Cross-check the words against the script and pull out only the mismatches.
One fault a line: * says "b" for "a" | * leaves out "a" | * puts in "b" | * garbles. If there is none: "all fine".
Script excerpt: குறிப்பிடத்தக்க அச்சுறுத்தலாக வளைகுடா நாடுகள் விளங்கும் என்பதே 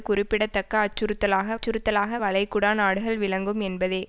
* puts in "அச்சுறுத்தலாக"